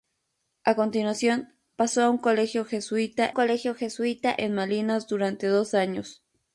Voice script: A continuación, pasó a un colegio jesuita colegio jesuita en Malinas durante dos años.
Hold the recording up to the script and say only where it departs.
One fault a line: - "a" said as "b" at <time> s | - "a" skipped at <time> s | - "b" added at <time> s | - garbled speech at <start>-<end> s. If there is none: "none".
none